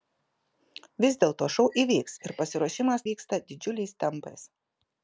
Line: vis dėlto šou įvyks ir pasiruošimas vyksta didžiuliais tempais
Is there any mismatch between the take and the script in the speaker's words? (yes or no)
no